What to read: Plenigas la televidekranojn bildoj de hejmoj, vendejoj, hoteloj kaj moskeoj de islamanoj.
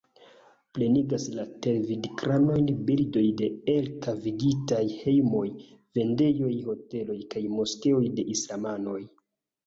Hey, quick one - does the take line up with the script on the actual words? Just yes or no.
no